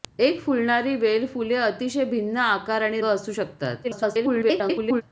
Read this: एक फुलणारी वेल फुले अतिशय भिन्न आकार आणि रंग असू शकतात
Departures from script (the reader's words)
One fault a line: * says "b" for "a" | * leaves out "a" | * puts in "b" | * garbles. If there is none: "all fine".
* leaves out "रंग"
* garbles